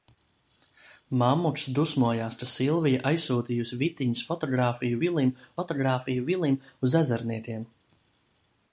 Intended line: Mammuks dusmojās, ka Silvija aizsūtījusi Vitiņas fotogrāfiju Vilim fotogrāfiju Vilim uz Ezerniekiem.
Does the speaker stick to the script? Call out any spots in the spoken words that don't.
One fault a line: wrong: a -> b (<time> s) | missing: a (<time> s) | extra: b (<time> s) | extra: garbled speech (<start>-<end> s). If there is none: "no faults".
no faults